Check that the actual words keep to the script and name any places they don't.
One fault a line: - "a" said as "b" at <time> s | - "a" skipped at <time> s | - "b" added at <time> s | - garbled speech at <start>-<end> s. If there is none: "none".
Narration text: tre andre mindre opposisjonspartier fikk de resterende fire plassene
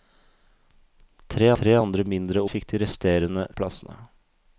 - "tre" added at 1.6 s
- "opposisjonspartier" skipped at 2.4 s
- "fire" skipped at 3.5 s